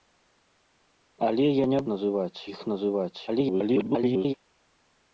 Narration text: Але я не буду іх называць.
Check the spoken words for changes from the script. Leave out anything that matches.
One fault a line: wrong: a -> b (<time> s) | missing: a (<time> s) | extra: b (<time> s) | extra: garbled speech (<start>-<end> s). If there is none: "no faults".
wrong: буду -> называць (1.9 s)
extra: garbled speech (3.3-4.3 s)